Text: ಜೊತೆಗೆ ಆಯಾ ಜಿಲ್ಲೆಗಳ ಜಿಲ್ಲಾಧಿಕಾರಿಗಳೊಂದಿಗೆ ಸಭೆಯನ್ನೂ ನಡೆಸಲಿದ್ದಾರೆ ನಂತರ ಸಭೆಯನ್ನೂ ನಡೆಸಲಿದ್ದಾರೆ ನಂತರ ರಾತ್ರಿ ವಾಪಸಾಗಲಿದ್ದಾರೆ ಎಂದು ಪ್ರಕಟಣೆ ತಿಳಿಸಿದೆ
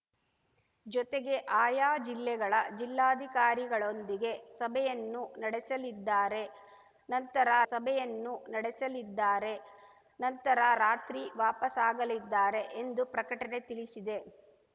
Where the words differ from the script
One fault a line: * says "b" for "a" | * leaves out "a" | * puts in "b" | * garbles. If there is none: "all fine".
all fine